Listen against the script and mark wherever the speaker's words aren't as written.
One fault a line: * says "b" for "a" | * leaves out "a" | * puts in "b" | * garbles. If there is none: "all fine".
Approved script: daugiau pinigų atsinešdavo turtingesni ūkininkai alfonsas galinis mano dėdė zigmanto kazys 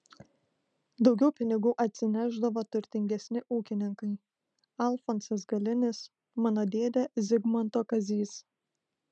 all fine